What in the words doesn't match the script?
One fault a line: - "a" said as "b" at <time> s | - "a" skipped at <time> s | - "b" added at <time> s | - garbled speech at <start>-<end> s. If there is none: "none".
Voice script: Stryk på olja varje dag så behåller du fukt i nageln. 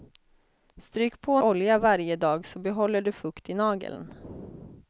none